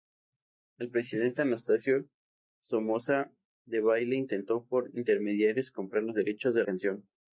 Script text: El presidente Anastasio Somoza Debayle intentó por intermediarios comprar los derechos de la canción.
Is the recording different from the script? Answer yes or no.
yes